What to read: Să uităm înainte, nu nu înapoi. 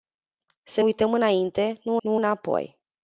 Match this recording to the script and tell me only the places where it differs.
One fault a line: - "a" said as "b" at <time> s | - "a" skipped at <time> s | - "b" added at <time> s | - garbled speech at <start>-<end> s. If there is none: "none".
none